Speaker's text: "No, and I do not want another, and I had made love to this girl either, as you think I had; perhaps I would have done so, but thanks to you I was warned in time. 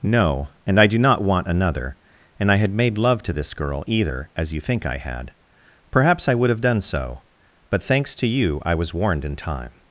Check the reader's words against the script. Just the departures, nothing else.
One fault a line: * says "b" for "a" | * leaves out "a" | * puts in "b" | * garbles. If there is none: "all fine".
all fine